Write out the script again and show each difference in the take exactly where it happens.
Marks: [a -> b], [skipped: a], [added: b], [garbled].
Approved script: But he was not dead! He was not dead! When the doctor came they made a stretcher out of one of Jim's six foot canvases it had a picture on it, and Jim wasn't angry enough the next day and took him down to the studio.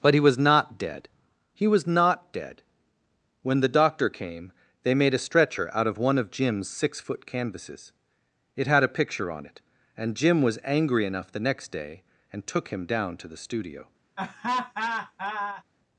But he was not dead! He was not dead! When the doctor came they made a stretcher out of one of Jim's six foot canvases it had a picture on it, and Jim [wasn't -> was] angry enough the next day and took him down to the studio.